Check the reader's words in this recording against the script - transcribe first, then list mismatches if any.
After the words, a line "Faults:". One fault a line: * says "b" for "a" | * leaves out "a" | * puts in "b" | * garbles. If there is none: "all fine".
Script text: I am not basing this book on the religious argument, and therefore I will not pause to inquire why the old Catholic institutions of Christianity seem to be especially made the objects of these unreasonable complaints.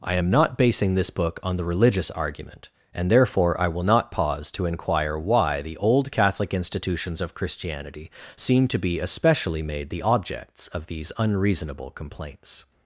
I am not basing this book on the religious argument, and therefore I will not pause to inquire why the old Catholic institutions of Christianity seem to be especially made the objects of these unreasonable complaints.
Faults:
all fine